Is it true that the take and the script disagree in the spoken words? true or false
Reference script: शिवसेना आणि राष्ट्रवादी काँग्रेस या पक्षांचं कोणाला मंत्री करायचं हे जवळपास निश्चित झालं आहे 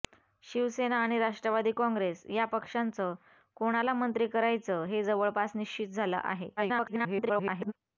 true